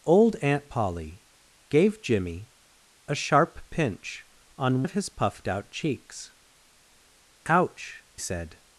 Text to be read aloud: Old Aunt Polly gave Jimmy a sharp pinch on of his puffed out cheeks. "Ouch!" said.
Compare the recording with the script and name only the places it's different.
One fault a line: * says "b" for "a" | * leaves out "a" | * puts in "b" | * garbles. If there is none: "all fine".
all fine